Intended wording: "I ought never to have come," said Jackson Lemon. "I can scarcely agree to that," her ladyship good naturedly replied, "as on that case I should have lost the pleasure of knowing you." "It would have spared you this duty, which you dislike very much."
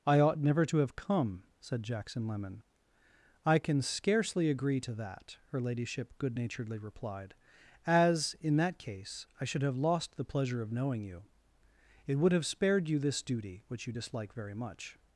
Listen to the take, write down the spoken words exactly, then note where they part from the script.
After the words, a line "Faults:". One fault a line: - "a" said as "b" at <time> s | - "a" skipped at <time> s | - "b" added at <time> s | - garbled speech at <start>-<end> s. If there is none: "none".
"I ought never to have come," said Jackson Lemon. "I can scarcely agree to that," her ladyship good naturedly replied, "as in that case I should have lost the pleasure of knowing you." "It would have spared you this duty, which you dislike very much."
Faults:
- "on" said as "in" at 8.4 s